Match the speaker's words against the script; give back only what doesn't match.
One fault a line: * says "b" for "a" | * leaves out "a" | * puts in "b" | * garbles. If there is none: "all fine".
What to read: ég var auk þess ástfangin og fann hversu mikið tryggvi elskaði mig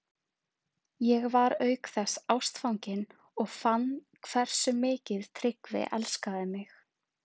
all fine